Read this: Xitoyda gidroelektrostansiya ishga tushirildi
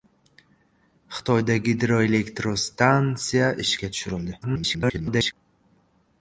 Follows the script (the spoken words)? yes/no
no